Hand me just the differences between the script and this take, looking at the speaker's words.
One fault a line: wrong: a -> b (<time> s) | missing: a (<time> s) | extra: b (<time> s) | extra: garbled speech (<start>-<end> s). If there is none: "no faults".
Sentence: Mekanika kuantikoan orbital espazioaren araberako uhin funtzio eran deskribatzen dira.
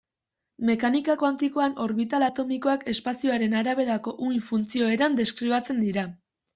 extra: atomikoak (2.2 s)